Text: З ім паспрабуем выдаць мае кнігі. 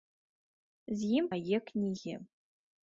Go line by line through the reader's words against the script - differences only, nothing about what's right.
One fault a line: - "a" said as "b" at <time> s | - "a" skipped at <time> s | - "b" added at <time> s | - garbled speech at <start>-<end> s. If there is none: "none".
- "паспрабуем выдаць" skipped at 1.2 s